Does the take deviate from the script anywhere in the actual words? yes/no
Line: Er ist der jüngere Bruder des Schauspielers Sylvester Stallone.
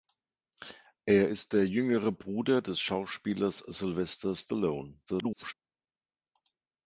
yes